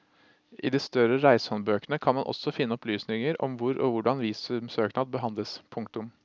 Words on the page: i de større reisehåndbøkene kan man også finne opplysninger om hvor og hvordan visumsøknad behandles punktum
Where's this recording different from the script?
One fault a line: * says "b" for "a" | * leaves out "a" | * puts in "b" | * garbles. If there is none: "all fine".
all fine